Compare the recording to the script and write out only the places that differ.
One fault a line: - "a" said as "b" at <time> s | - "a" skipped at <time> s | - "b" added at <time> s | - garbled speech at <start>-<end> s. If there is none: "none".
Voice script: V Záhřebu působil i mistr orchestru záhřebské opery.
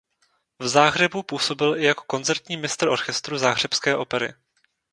- "jako koncertní" added at 1.8 s